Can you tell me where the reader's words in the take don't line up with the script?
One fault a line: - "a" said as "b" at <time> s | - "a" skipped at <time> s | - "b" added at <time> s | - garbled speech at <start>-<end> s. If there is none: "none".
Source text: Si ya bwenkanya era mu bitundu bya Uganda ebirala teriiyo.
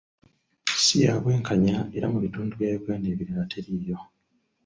none